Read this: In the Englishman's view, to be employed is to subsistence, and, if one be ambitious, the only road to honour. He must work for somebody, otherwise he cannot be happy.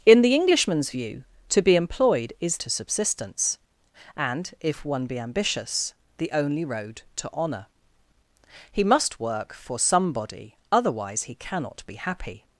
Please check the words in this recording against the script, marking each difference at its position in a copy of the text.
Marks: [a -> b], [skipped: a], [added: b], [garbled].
In the Englishman's view, to be employed is to subsistence, and, if one be ambitious, the only road to honour. He must work for somebody, otherwise he cannot be happy.